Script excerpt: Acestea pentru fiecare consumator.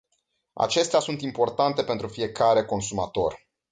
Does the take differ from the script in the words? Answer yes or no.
yes